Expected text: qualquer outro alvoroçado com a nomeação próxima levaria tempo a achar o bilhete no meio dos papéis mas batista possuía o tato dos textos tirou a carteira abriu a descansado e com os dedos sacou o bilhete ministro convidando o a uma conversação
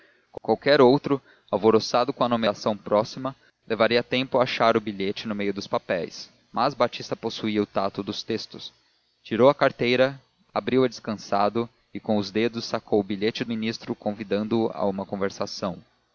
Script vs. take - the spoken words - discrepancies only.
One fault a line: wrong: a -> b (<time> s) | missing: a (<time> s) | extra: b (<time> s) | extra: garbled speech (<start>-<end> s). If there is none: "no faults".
no faults